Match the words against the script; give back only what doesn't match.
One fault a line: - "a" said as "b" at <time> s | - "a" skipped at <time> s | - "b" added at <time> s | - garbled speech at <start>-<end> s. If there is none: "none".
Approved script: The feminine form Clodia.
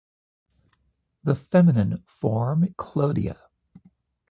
none